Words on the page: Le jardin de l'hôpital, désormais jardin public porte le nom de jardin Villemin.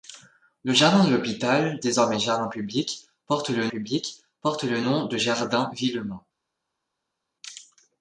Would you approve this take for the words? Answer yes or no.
no